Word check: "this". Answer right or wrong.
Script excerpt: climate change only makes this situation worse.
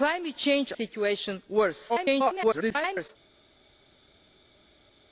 wrong